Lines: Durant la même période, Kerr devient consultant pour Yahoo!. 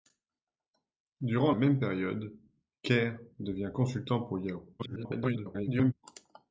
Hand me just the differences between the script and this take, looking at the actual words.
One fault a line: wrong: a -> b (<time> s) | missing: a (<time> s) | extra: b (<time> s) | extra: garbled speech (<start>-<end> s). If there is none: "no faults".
missing: la (1.5 s)
extra: garbled speech (4.8-5.9 s)